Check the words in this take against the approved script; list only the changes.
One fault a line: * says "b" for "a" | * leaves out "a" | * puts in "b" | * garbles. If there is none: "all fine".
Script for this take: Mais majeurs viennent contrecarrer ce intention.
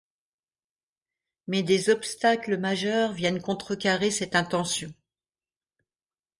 * puts in "des obstacles"
* says "cette" for "ce"